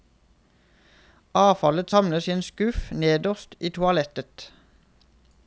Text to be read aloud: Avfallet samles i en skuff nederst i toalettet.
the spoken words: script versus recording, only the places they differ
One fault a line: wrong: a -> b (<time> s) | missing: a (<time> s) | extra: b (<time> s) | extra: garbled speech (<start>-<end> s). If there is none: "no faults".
no faults